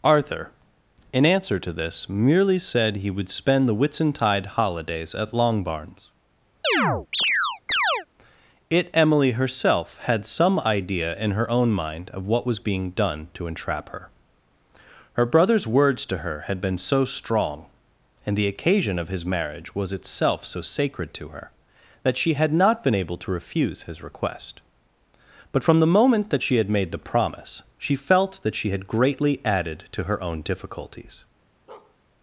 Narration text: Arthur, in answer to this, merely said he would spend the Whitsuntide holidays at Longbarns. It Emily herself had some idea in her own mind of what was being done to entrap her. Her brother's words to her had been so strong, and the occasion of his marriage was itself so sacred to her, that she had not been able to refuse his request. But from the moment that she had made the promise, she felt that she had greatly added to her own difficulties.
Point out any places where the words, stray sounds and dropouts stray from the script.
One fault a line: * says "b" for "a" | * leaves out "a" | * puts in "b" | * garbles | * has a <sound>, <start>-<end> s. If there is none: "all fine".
* has a chirp, 6.6-8.1 s
* has a bark, 31.7-32.0 s